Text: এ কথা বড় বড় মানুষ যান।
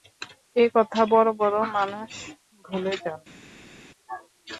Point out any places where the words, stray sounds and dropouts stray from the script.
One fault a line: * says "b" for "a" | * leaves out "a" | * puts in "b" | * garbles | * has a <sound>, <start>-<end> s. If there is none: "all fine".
* puts in "ভুলে"